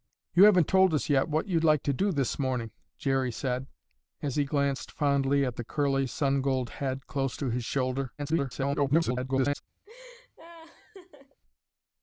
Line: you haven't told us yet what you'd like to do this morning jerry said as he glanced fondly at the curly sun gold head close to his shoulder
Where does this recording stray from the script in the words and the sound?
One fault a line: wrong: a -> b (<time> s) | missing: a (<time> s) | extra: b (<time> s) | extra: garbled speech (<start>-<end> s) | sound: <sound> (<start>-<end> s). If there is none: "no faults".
extra: garbled speech (8.2-9.6 s)
sound: laugh (9.8-11.4 s)